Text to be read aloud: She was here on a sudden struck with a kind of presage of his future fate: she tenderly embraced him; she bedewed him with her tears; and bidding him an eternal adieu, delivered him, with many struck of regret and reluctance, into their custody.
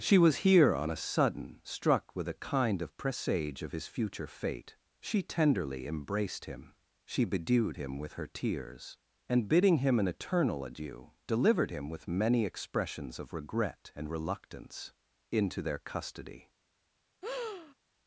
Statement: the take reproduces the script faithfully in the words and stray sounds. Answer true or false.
false